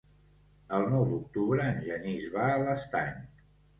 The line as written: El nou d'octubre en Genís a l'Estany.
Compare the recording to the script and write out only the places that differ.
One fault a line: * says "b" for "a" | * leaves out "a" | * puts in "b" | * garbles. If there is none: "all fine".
* puts in "va"